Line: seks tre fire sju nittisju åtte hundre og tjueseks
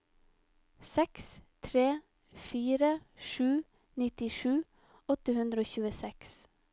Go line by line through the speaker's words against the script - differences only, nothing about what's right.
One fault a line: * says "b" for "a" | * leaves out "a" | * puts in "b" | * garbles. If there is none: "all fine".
all fine